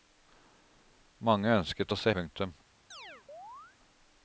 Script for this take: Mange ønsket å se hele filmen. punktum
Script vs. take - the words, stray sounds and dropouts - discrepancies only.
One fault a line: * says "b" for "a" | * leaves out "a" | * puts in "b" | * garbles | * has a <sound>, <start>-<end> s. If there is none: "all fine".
* leaves out "hele filmen"
* has a chirp, 2.9-3.8 s